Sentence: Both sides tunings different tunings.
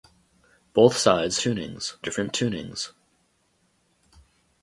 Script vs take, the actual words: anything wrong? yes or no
no